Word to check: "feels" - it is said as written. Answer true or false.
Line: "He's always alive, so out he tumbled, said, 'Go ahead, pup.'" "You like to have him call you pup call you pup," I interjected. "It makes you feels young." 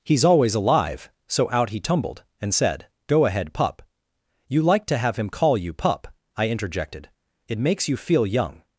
false